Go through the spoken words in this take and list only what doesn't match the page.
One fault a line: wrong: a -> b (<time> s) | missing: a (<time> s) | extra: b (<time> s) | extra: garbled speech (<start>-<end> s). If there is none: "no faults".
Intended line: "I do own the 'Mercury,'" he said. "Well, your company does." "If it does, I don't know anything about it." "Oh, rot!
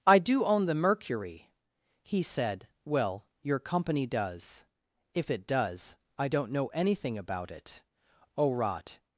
no faults